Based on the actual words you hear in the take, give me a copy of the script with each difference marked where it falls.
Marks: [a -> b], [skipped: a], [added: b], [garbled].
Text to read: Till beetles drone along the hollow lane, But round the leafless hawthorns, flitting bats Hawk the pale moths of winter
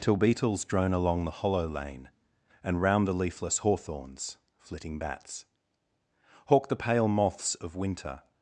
Till beetles drone along the hollow lane, [But -> And] round the leafless hawthorns, flitting bats Hawk the pale moths of winter